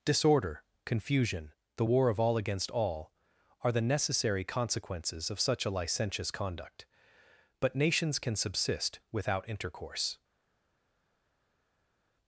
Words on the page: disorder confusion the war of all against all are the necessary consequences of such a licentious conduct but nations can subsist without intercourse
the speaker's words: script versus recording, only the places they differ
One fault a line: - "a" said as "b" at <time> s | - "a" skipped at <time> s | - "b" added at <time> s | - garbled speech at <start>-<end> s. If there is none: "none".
none